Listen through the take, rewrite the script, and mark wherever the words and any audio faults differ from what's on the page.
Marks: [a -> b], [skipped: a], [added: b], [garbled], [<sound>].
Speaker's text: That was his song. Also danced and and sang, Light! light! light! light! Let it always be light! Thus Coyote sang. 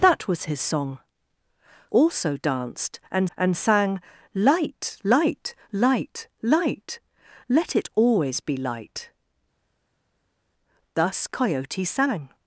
That was his song. Also danced and and sang, Light! light! light! light! Let it always be light! Thus Coyote sang.